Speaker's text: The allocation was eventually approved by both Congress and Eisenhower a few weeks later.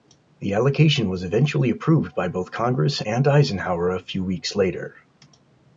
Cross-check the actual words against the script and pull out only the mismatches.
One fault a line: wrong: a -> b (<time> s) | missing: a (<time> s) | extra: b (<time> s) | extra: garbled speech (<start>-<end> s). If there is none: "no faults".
no faults